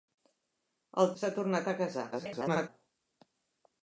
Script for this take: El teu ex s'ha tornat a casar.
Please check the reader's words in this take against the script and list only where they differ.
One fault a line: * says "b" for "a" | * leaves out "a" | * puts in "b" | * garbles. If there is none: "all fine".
* leaves out "teu ex"
* garbles